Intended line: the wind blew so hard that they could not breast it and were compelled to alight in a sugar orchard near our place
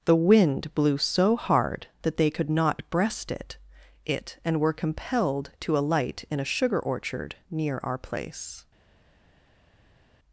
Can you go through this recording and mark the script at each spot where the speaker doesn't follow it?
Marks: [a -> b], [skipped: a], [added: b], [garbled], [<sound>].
the wind blew so hard that they could not breast it [added: it] and were compelled to alight in a sugar orchard near our place